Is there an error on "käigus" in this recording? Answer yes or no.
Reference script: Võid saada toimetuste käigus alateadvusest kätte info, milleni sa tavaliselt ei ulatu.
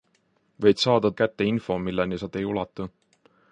yes